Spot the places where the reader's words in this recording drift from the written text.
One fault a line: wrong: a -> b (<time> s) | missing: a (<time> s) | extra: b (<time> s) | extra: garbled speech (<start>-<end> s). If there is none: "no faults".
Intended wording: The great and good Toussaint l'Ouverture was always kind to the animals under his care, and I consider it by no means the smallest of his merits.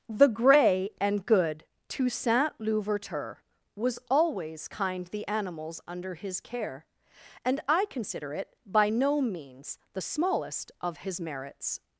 wrong: great -> grey (0.3 s)
missing: to (5.1 s)